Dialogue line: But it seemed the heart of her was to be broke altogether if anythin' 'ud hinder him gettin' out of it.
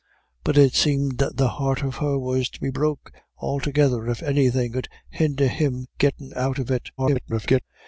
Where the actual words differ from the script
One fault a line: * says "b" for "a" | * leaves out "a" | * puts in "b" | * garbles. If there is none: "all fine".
* garbles